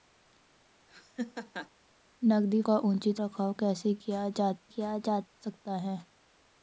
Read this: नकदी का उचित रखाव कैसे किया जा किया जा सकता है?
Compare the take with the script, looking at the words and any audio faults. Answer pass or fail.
fail